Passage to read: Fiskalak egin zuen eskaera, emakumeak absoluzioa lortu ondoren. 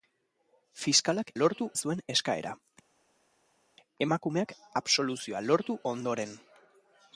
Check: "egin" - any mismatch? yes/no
yes